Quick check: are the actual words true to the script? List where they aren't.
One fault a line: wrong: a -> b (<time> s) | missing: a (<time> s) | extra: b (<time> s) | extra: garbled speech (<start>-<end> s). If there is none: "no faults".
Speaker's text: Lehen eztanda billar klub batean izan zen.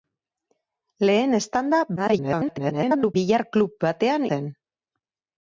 extra: garbled speech (2.0-3.1 s)
missing: izan (4.3 s)